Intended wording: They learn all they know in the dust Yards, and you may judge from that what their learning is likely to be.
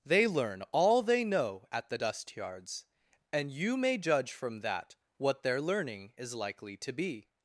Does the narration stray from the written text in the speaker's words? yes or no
yes